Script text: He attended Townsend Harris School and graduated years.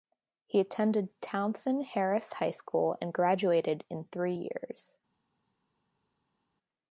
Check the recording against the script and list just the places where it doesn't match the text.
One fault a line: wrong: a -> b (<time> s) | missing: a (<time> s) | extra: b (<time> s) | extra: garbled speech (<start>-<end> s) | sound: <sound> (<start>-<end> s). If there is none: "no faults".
extra: High (2.3 s)
extra: in three (3.9 s)